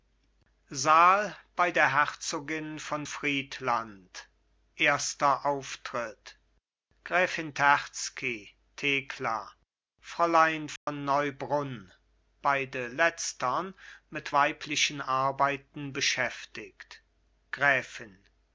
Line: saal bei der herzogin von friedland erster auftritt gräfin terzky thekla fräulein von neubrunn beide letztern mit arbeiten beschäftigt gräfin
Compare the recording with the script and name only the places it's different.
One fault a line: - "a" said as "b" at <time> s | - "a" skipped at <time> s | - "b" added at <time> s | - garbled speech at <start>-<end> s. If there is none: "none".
- "weiblichen" added at 14.3 s